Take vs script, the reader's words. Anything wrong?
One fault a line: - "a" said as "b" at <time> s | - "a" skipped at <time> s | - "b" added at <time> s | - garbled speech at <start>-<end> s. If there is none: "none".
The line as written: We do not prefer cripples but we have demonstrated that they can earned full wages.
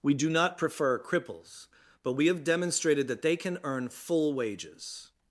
- "earned" said as "earn" at 3.6 s